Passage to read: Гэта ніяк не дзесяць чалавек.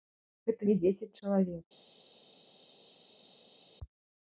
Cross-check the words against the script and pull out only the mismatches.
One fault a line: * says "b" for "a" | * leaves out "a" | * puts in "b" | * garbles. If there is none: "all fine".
* leaves out "ніяк"